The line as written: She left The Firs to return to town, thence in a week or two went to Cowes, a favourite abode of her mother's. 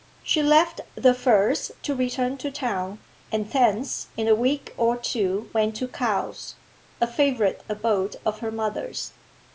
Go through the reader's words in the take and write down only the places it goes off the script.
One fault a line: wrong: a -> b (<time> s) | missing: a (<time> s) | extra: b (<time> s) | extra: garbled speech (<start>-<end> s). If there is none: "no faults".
extra: and (3.3 s)